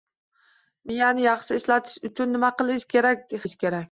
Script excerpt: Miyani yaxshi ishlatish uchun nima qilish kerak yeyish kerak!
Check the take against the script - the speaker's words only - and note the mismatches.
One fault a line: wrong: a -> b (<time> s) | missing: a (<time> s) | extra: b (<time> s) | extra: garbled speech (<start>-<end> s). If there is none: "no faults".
no faults